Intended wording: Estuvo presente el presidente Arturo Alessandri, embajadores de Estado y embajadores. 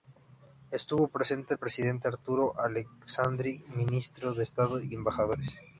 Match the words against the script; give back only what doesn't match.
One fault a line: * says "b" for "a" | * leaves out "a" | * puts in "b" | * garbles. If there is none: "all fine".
* says "ministros" for "embajadores"